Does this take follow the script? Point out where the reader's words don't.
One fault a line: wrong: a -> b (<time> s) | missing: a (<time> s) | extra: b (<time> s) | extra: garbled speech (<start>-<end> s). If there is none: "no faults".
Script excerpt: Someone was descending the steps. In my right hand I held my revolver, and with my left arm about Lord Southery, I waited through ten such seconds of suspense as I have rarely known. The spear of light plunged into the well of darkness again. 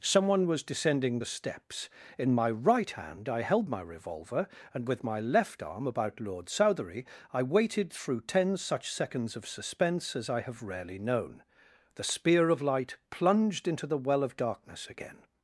no faults